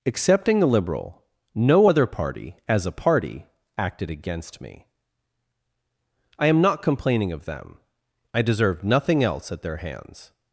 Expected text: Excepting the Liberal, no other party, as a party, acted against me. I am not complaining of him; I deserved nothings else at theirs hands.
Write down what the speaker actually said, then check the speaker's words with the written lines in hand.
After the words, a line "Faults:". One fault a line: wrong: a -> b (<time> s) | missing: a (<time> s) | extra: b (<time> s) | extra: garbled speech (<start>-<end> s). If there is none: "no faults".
Excepting the Liberal, no other party, as a party, acted against me. I am not complaining of them; I deserved nothing else at their hands.
Faults:
wrong: him -> them (7.5 s)
wrong: nothings -> nothing (8.8 s)
wrong: theirs -> their (9.6 s)